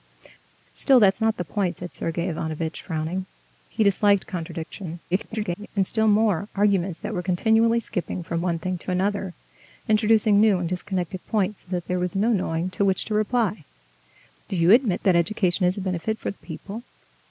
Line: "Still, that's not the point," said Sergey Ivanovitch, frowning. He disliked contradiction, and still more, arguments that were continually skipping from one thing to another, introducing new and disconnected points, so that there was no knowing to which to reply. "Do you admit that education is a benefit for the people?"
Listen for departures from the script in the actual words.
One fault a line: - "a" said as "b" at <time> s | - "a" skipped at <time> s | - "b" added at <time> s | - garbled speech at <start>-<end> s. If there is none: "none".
- garbled speech at 5.1-5.7 s